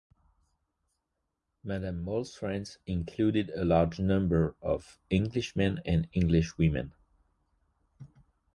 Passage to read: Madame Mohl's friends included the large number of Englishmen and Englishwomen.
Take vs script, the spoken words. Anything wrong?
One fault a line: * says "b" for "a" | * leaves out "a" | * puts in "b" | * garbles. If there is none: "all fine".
* says "a" for "the"